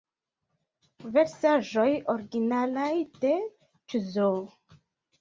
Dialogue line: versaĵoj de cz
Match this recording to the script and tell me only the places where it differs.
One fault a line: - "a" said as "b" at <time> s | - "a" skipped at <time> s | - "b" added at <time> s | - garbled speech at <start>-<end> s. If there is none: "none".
- "originalaj" added at 2.1 s